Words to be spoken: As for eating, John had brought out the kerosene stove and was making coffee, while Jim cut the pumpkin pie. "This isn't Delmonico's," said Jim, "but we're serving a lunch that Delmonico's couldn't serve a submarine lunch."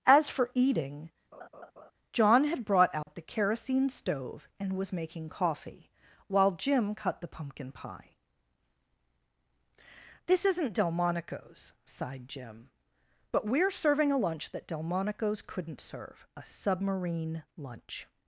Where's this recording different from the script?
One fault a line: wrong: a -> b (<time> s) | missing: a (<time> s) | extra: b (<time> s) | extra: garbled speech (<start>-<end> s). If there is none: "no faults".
wrong: said -> sighed (11.8 s)